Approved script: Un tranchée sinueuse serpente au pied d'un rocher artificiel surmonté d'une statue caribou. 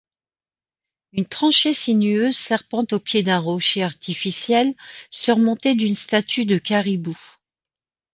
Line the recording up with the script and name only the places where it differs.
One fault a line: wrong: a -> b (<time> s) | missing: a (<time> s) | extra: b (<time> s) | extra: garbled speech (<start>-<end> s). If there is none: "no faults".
wrong: Un -> Une (1.1 s)
extra: de (6.5 s)